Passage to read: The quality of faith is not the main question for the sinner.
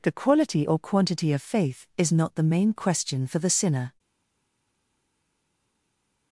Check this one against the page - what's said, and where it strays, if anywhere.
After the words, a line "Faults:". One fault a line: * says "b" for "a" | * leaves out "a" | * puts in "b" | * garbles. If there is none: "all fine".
The quality or quantity of faith is not the main question for the sinner.
Faults:
* puts in "or quantity"